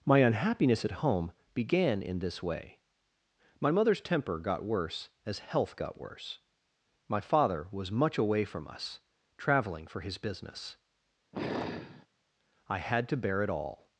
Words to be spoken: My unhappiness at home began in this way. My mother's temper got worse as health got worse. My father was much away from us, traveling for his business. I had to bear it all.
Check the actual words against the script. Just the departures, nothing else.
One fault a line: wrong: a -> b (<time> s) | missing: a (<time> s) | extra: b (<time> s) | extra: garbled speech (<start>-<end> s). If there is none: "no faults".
no faults